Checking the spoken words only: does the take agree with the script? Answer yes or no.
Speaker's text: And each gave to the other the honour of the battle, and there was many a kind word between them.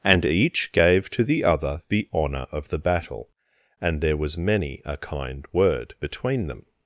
yes